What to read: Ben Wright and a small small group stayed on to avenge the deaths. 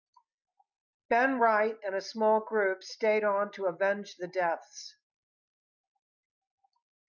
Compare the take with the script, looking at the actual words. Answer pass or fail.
fail